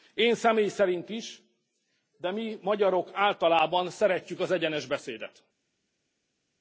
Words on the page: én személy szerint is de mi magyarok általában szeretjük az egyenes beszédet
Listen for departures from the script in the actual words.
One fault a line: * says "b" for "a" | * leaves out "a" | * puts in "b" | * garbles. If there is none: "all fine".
all fine